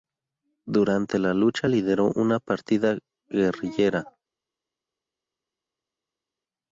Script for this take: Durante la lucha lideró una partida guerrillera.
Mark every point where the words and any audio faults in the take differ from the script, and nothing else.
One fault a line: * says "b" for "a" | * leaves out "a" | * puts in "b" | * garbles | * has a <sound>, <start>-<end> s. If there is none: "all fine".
all fine